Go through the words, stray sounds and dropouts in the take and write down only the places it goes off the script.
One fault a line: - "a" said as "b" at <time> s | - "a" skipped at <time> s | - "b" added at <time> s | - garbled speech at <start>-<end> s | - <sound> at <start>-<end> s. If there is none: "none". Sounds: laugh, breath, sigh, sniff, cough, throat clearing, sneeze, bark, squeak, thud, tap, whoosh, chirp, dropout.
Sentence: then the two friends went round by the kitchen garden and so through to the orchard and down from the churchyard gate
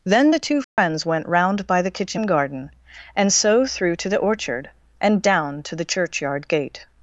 - dropout at 0.6-0.8 s
- "from" said as "to" at 5.6 s